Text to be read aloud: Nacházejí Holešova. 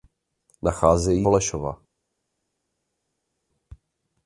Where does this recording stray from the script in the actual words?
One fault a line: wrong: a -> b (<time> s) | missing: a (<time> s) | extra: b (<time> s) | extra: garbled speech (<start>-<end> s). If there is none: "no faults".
no faults